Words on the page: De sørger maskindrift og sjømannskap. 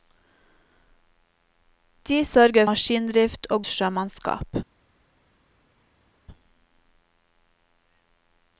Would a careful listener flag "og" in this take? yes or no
no